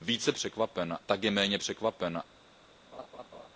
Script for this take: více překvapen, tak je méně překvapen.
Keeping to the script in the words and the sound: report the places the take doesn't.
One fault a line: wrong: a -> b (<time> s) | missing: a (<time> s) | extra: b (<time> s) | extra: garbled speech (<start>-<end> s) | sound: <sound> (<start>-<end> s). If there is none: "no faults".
sound: laugh (2.9-3.5 s)